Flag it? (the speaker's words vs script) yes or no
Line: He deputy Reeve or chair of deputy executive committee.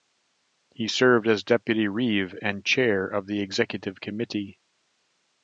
yes